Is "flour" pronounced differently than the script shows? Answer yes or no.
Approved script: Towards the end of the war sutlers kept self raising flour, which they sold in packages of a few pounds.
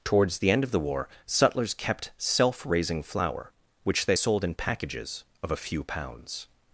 no